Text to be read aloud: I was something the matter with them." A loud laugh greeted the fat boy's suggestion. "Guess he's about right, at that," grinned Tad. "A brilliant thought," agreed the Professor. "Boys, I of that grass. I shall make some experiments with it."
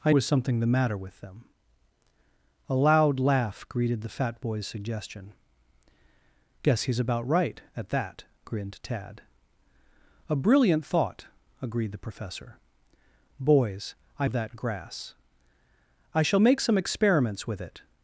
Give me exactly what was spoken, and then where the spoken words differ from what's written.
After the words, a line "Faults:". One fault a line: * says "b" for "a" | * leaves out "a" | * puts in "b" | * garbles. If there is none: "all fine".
I was something the matter with them." A loud laugh greeted the fat boy's suggestion. "Guess he's about right, at that," grinned Tad. "A brilliant thought," agreed the Professor. "Boys, I of that grass. I shall make some experiments with it."
Faults:
all fine